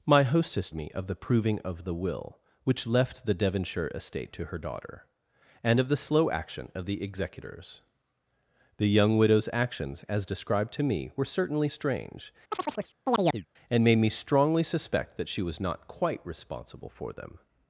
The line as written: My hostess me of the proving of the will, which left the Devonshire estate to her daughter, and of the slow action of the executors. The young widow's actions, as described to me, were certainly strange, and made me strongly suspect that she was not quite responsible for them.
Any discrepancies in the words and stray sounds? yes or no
yes